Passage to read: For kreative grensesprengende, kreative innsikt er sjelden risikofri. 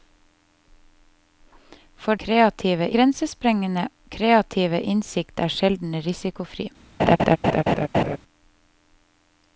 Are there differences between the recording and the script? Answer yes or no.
no